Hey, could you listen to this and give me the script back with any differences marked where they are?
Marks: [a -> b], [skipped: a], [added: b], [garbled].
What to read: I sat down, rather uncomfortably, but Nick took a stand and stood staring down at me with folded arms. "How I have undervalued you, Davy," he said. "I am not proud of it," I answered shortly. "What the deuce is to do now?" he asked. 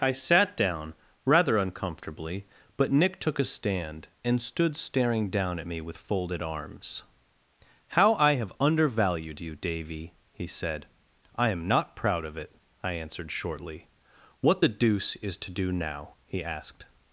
I sat down, rather uncomfortably, but Nick took a stand and stood staring down at me with folded arms. "How I have undervalued you, Davy," he said. "I am not proud of it," I answered shortly. "What the deuce is to do now?" he asked.